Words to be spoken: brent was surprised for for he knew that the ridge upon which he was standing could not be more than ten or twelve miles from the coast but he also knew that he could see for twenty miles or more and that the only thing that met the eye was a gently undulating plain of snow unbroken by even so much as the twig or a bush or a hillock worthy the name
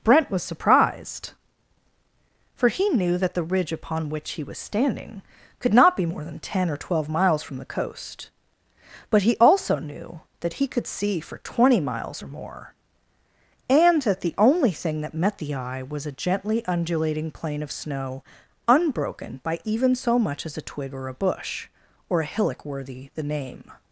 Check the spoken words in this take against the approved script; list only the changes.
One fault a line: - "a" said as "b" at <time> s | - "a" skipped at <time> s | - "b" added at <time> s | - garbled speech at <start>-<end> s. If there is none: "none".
- "for" skipped at 2.7 s
- "the" said as "a" at 20.6 s